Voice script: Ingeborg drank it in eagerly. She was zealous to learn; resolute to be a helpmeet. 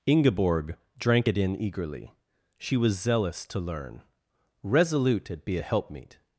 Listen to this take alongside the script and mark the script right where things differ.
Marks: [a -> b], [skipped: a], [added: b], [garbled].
Ingeborg drank it in eagerly. She was zealous to learn; resolute [to -> at] be a helpmeet.